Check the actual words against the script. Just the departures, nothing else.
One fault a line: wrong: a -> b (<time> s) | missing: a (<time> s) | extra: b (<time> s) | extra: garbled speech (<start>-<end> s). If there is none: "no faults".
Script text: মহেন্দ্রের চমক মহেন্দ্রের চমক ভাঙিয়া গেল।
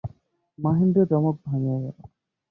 missing: মহেন্দ্রের চমক (1.3 s)